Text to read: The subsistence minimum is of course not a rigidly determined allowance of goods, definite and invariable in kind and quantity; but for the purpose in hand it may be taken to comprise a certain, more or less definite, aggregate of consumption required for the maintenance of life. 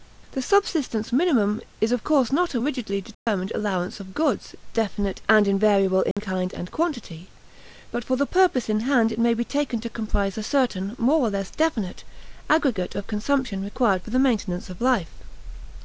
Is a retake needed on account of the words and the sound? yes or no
yes